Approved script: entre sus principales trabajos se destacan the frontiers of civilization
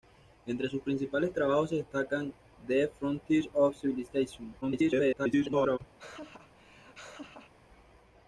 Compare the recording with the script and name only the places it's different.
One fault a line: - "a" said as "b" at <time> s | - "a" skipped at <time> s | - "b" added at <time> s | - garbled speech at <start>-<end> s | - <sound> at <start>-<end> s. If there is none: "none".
- garbled speech at 4.6-5.8 s
- laugh at 6.0-7.5 s